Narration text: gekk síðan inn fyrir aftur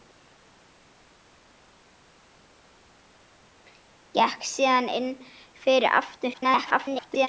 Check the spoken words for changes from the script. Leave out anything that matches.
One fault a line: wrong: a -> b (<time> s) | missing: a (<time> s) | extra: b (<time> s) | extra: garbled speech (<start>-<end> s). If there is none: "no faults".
extra: garbled speech (6.3-7.3 s)